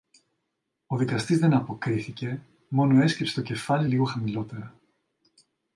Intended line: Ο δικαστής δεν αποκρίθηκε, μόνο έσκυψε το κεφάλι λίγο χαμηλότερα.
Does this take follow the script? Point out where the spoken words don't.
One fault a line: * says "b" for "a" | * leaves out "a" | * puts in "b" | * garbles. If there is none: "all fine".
all fine